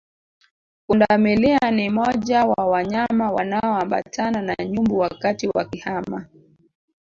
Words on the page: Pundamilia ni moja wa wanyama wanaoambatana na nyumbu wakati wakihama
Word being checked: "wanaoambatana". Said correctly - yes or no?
yes